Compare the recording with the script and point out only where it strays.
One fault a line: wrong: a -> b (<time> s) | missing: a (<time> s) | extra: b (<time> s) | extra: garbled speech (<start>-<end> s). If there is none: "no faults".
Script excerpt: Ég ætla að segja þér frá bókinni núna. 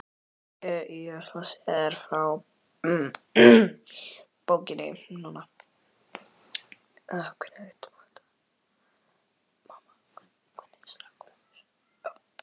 no faults